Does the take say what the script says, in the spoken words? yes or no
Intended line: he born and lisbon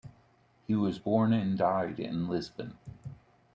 no